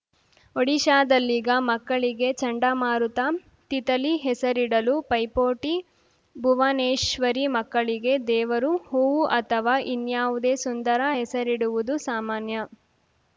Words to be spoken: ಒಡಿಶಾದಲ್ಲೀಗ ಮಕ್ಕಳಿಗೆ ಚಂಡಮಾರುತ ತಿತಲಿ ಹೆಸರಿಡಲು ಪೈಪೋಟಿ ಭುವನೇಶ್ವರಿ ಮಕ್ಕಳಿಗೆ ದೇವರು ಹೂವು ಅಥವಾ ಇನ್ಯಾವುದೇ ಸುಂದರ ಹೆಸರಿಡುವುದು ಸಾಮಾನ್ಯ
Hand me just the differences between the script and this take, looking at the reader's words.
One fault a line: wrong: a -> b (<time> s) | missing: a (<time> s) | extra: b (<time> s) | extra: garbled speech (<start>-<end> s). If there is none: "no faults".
no faults